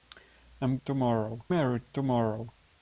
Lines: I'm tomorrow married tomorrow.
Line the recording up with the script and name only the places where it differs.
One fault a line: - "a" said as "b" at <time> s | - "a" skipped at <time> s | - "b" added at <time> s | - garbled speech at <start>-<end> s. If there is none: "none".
none